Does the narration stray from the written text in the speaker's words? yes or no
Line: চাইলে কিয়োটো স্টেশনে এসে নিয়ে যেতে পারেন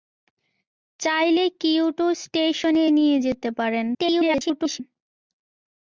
yes